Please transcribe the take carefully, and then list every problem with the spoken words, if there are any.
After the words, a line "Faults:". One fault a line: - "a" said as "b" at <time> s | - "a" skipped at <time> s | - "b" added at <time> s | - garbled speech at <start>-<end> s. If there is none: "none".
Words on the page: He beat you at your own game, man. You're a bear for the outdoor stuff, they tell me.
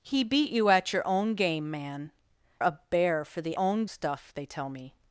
He beat you at your own game, man. A bear for the own stuff, they tell me.
Faults:
- "You're" skipped at 2.1 s
- "outdoor" said as "own" at 3.6 s